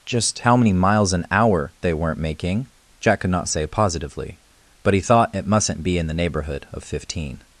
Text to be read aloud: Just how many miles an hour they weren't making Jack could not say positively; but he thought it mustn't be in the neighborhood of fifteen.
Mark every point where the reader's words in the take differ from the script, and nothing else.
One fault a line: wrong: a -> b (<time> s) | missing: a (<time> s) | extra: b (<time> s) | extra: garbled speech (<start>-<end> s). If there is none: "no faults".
no faults